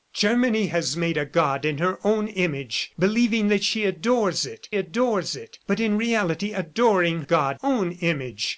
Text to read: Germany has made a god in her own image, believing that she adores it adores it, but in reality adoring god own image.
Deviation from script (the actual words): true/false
false